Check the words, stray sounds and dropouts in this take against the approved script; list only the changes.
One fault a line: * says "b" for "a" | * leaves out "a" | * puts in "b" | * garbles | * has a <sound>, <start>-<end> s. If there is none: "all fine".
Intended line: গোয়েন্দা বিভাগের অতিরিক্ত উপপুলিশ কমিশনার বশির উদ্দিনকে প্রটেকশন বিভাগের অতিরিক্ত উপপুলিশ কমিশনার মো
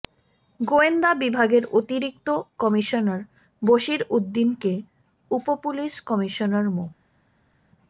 * leaves out "উপপুলিশ"
* leaves out "প্রটেকশন বিভাগের অতিরিক্ত"